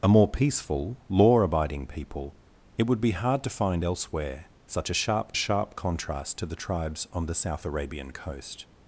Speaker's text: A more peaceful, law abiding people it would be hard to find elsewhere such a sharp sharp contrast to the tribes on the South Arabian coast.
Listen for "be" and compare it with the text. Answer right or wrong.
right